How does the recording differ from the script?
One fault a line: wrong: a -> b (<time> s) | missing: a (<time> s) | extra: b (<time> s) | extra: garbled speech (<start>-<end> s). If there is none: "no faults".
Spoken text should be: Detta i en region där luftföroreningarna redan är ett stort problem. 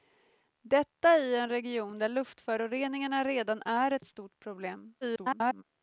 extra: garbled speech (5.0-5.6 s)